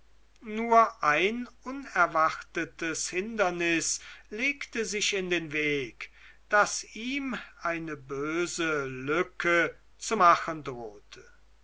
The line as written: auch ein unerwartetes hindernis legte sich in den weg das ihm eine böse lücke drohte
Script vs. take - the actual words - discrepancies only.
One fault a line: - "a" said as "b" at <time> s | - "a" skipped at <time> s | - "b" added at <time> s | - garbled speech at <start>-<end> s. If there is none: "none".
- "auch" said as "nur" at 0.4 s
- "zu machen" added at 10.0 s